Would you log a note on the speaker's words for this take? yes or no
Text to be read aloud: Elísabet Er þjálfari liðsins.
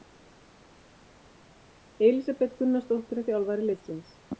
yes